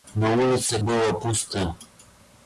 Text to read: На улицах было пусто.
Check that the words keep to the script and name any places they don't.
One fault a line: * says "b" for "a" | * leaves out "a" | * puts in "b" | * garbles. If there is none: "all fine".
all fine